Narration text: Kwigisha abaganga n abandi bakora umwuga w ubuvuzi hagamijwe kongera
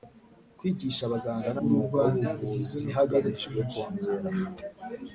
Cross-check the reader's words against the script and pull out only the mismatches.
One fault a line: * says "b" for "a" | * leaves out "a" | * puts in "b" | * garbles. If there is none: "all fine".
* leaves out "abandi bakora"